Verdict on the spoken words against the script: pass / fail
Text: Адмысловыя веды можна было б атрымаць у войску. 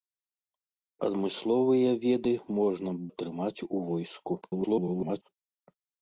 fail